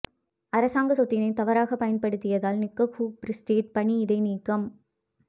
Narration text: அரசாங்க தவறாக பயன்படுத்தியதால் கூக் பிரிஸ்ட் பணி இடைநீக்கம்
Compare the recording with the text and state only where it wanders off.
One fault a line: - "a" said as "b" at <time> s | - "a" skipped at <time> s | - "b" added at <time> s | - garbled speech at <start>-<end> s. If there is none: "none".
- "சொத்தினை" added at 0.9 s
- "நிக்" added at 2.6 s